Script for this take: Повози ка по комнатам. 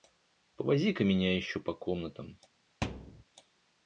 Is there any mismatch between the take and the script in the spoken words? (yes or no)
yes